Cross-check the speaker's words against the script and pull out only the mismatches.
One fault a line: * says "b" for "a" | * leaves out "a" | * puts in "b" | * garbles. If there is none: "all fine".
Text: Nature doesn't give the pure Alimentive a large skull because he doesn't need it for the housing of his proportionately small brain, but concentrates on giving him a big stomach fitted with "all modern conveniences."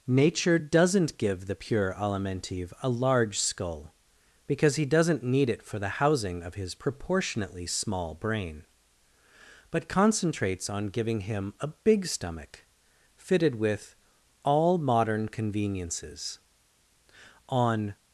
* puts in "On"